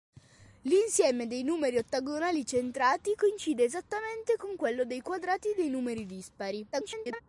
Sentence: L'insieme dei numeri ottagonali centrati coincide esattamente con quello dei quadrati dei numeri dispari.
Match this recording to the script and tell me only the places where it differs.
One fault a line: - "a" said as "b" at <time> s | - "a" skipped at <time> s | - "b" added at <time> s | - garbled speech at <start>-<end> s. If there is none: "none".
- garbled speech at 6.7-7.2 s